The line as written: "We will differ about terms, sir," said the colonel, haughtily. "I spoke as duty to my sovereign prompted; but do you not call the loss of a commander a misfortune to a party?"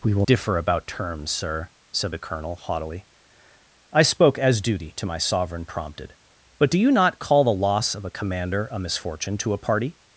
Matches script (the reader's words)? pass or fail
pass